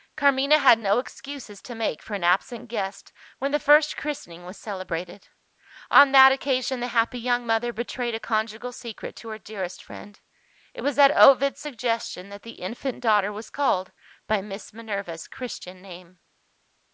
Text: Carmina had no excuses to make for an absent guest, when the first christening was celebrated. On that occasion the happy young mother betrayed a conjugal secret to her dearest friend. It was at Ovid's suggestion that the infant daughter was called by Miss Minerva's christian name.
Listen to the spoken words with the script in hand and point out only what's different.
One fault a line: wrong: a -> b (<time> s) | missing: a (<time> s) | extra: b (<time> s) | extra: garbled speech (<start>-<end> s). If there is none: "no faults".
no faults